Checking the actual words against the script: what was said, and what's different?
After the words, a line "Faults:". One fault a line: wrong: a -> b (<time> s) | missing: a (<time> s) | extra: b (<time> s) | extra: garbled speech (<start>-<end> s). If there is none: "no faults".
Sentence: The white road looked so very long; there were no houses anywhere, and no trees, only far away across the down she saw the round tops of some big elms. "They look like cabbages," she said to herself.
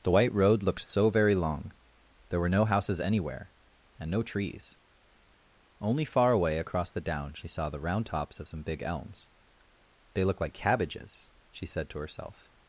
The white road looked so very long; there were no houses anywhere, and no trees, only far away across the down she saw the round tops of some big elms. "They look like cabbages," she said to herself.
Faults:
no faults